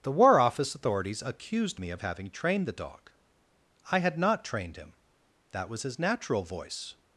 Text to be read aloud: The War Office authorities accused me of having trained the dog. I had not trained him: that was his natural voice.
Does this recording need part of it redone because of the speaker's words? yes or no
no